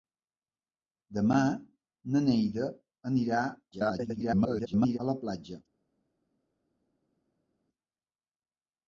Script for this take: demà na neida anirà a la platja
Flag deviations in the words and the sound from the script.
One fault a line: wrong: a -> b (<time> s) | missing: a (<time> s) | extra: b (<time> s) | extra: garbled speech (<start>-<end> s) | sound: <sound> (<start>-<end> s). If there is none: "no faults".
extra: garbled speech (3.7-5.0 s)